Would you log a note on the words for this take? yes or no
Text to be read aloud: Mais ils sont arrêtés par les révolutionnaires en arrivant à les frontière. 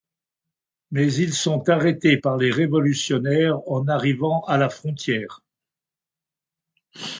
yes